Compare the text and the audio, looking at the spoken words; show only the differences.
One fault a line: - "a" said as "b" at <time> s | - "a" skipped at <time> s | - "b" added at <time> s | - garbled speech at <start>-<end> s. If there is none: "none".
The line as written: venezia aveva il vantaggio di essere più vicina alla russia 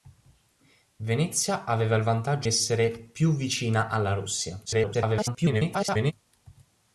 - "di" skipped at 2.5 s
- garbled speech at 4.7-6.1 s